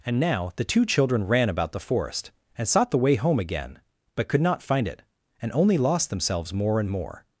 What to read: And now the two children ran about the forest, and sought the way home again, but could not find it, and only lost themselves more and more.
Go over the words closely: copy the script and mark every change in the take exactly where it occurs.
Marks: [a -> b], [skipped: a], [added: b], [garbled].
And now the two children ran about the forest, and sought the way home again, but could not find it, and only lost themselves more and more.